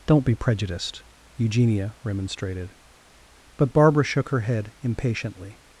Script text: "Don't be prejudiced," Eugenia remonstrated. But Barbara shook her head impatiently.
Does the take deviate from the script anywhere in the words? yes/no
no